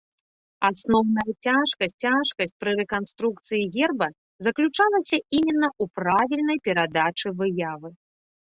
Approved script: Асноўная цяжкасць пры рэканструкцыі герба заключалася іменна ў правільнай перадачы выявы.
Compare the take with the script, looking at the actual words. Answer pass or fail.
fail